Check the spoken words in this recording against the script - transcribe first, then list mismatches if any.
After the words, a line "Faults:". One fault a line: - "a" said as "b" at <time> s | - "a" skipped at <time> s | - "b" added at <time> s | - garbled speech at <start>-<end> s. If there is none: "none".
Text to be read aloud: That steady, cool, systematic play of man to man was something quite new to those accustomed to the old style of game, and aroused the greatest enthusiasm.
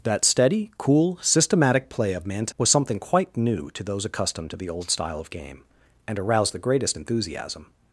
That steady, cool, systematic play of man to was something quite new to those accustomed to the old style of game, and aroused the greatest enthusiasm.
Faults:
- "man" skipped at 2.5 s